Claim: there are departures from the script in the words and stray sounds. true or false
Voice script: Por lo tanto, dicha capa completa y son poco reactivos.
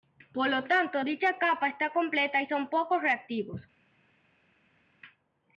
true